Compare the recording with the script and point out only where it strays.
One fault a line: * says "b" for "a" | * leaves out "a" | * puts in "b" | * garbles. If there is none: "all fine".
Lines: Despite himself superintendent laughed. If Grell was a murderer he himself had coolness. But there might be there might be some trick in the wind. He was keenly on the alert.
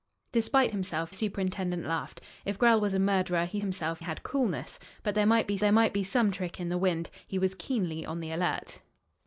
all fine